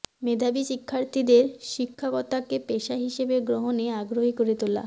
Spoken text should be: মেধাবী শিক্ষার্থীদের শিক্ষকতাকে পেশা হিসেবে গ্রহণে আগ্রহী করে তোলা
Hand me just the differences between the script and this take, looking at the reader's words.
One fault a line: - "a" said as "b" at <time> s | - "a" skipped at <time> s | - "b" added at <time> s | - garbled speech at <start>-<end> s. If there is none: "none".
none